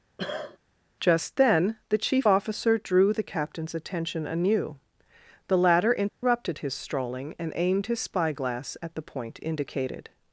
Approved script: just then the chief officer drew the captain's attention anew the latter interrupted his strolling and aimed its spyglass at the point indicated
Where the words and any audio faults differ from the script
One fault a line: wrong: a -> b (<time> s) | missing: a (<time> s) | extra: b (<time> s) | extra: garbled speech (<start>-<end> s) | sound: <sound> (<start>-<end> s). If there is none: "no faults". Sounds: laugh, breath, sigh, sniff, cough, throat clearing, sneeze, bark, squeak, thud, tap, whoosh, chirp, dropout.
sound: cough (0.2-0.6 s)
sound: dropout (6.1-6.2 s)
wrong: its -> his (7.9 s)